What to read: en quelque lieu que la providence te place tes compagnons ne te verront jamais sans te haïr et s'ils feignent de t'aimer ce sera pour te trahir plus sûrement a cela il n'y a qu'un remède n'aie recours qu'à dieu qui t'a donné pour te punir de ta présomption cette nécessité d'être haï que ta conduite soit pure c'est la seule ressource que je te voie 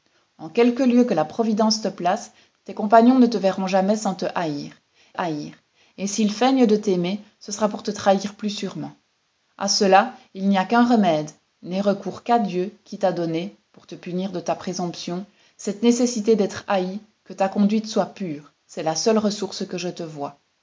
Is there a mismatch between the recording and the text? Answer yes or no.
yes